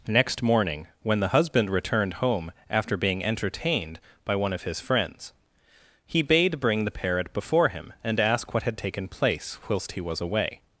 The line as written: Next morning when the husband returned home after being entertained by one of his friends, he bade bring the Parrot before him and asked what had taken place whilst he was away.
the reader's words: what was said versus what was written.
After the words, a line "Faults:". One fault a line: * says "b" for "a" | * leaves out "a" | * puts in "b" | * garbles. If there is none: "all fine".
Next morning when the husband returned home after being entertained by one of his friends, he bade bring the Parrot before him and ask what had taken place whilst he was away.
Faults:
* says "ask" for "asked"